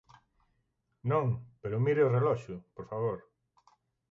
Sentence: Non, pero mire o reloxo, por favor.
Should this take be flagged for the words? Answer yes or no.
no